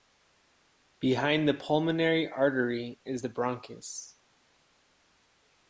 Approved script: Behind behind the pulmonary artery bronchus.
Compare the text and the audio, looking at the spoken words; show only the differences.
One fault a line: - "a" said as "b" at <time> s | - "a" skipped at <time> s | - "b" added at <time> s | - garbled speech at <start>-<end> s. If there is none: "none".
- "behind" skipped at 1.5 s
- "is the" added at 3.0 s